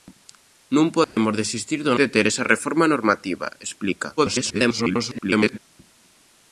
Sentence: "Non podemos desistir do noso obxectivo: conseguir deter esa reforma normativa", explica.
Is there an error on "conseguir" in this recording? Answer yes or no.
yes